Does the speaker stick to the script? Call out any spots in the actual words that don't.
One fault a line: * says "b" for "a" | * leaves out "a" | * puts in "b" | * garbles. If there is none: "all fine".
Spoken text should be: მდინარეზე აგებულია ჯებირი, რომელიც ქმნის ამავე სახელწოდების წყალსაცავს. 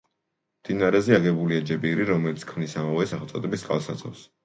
all fine